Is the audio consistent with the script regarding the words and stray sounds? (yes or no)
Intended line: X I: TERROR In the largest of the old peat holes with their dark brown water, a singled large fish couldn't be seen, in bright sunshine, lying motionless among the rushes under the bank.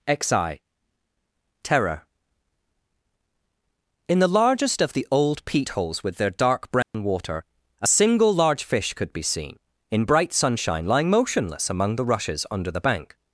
no